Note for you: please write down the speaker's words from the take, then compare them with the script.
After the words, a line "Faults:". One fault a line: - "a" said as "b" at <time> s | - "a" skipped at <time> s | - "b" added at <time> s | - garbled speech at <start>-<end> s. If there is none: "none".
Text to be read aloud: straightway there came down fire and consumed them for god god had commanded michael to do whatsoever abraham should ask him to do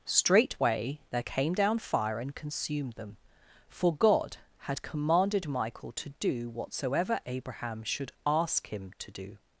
straightway there came down fire and consumed them for god had commanded michael to do whatsoever abraham should ask him to do
Faults:
- "god" skipped at 4.4 s